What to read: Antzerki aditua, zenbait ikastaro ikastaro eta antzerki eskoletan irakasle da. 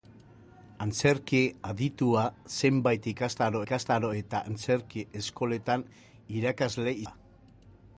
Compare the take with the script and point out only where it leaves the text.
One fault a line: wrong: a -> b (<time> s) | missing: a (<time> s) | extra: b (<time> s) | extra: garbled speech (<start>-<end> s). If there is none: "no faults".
no faults